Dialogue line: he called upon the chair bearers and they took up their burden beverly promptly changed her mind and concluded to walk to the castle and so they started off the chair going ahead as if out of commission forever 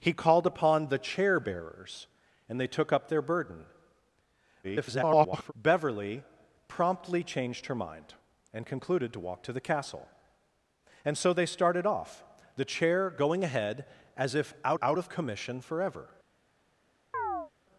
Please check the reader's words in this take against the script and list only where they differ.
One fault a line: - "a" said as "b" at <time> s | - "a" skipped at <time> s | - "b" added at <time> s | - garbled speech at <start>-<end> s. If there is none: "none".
- garbled speech at 4.6-5.5 s
- "out" added at 14.8 s